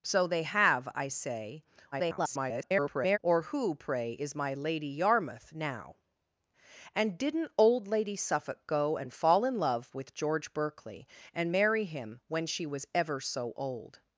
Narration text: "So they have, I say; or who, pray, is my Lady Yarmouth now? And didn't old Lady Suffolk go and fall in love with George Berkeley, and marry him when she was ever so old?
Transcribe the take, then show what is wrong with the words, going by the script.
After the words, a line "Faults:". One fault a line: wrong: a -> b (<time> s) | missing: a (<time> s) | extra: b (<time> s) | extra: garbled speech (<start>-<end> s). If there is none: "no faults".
"So they have, I say; [garbled] or who, pray, is my Lady Yarmouth now? And didn't old Lady Suffolk go and fall in love with George Berkeley, and marry him when she was ever so old?
Faults:
extra: garbled speech (1.9-3.2 s)